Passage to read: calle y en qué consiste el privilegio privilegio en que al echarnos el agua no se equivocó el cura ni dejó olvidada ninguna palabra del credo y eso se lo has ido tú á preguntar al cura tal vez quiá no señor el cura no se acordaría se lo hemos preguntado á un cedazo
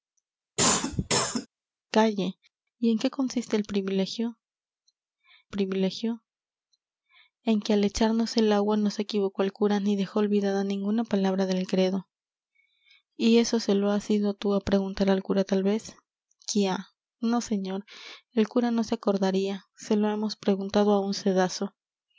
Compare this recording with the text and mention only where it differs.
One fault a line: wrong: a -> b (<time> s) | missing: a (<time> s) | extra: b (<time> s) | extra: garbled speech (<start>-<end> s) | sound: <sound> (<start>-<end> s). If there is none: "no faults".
sound: cough (0.6-1.5 s)